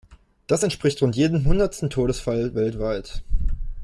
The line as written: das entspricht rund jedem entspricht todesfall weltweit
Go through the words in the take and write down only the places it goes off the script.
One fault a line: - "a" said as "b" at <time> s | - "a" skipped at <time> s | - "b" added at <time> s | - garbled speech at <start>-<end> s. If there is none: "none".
- "entspricht" said as "hundertsten" at 1.4 s